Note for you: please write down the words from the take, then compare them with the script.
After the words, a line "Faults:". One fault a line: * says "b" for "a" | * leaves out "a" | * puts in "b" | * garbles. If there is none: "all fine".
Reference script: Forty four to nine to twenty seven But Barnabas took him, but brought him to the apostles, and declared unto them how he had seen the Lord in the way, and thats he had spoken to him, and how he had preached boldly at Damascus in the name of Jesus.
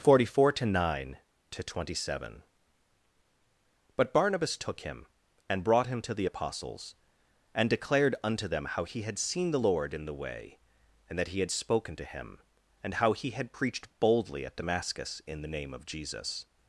Forty four to nine to twenty seven But Barnabas took him, and brought him to the apostles, and declared unto them how he had seen the Lord in the way, and that he had spoken to him, and how he had preached boldly at Damascus in the name of Jesus.
Faults:
* says "and" for "but"
* says "that" for "thats"